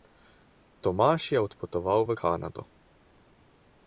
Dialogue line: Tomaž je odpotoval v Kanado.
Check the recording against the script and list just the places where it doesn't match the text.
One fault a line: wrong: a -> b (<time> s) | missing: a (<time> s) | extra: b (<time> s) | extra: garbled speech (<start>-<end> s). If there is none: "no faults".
no faults